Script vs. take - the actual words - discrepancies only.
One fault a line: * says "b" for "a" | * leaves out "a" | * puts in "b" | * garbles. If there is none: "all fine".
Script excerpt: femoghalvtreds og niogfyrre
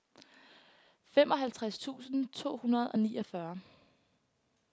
* puts in "tusind to hundrede"